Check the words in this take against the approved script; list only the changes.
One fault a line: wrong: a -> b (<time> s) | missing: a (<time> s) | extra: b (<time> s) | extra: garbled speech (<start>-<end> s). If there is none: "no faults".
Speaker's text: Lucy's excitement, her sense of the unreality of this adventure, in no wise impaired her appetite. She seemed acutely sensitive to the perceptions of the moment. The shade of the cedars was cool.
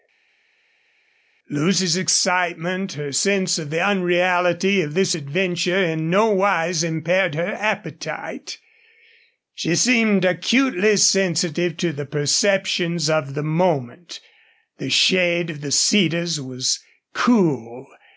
no faults